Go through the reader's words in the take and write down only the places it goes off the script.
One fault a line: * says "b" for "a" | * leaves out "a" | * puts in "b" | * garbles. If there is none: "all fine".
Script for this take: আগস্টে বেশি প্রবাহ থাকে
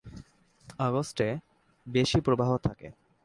all fine